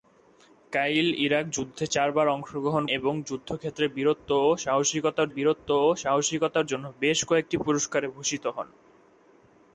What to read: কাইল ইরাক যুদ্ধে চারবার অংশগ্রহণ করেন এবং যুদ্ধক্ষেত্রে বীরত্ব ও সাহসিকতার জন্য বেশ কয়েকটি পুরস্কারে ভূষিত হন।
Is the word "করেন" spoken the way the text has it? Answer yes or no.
no